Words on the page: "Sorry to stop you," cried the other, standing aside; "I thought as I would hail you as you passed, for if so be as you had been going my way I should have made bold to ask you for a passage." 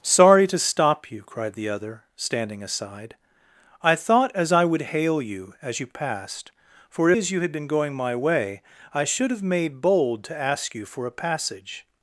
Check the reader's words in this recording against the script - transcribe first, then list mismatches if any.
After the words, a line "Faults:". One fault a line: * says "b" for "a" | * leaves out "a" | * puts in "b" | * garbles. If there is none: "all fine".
"Sorry to stop you," cried the other, standing aside; "I thought as I would hail you as you passed, for as you had been going my way I should have made bold to ask you for a passage."
Faults:
* leaves out "if so be"